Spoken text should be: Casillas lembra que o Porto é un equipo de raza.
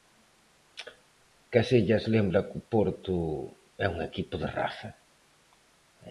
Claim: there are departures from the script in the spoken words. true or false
false